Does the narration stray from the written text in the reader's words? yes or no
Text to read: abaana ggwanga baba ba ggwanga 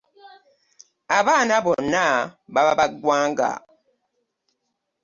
yes